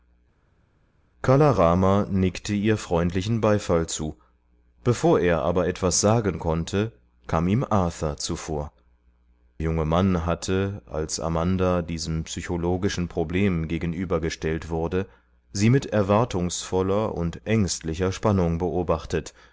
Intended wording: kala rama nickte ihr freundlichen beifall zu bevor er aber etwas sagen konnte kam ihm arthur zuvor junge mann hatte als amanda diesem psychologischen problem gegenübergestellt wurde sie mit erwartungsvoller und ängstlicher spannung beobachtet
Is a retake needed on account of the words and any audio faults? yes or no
no